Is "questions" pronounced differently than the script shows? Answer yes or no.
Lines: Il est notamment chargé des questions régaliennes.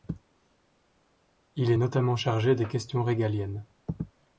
no